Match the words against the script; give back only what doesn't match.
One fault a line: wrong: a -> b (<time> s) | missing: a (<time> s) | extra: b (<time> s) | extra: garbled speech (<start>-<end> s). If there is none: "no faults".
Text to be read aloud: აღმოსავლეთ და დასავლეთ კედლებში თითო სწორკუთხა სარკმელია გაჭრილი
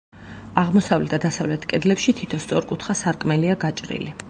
no faults